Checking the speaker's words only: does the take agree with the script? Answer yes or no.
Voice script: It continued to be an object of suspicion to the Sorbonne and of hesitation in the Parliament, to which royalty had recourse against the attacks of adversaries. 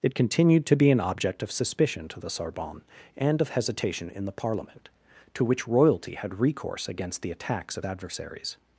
yes